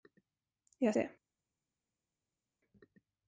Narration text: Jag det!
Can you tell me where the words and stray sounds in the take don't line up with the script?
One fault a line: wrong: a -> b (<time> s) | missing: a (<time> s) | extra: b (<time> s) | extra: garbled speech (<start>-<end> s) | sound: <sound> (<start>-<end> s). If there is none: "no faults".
no faults